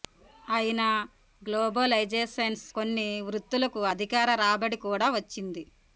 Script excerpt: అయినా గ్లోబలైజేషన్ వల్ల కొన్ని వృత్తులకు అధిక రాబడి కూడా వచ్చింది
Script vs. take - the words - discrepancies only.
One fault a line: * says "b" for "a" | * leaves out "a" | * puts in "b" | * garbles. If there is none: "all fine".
* leaves out "వల్ల"